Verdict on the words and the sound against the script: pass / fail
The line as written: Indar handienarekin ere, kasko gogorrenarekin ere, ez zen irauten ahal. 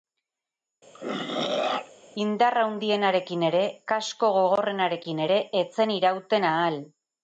fail